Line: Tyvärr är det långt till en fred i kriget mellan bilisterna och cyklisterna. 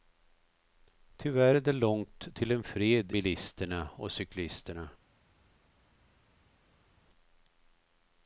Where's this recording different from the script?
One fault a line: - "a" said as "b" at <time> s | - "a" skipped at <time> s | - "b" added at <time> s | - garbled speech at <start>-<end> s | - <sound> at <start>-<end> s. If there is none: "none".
- "i kriget mellan" skipped at 3.1 s